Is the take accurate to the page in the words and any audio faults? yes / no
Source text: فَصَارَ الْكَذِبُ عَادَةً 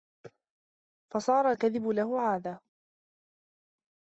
no